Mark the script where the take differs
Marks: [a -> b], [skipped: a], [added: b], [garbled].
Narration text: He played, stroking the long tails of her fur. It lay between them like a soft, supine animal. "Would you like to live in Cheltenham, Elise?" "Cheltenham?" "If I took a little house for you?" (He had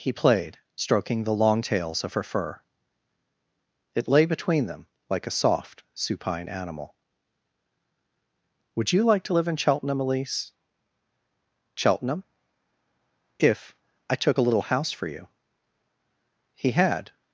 He played, stroking the long tails of her fur. It lay between them like a soft, supine animal. "Would you like to live in Cheltenham, Elise?" "Cheltenham?" "If I took a little house for you?" (He had